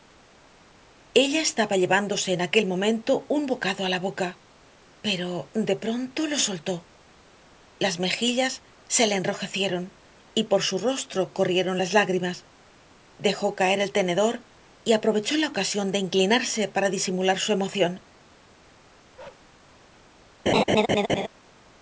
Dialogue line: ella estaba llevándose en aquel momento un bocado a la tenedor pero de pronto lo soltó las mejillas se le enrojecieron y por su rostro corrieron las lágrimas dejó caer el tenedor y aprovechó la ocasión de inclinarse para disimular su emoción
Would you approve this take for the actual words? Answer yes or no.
no